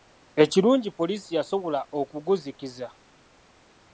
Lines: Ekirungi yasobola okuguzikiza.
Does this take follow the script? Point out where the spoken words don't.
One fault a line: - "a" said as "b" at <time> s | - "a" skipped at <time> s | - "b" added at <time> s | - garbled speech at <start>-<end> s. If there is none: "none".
- "poliisi" added at 1.0 s